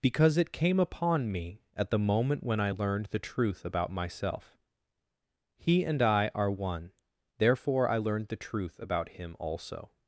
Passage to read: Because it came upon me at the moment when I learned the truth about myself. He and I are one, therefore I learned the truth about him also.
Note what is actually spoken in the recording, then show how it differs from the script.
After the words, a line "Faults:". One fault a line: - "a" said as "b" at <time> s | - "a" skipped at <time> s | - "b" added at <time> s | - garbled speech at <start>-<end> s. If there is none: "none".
Because it came upon me at the moment when I learned the truth about myself. He and I are one, therefore I learned the truth about him also.
Faults:
none